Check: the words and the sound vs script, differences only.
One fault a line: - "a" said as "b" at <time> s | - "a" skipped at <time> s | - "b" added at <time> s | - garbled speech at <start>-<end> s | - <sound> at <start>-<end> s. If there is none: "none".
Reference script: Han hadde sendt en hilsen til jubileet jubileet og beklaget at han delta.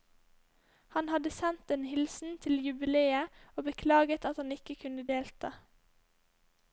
- "jubileet" skipped at 3.3 s
- "ikke kunne" added at 4.5 s